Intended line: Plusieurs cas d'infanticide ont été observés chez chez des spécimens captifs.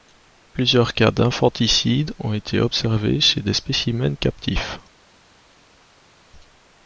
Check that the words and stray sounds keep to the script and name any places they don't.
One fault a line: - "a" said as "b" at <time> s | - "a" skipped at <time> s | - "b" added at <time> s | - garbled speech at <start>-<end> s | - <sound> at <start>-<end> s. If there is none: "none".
- "chez" skipped at 3.4 s